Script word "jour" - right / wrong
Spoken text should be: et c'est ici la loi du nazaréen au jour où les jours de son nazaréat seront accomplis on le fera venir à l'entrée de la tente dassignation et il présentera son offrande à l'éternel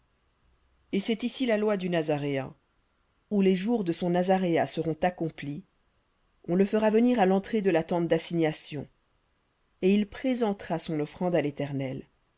wrong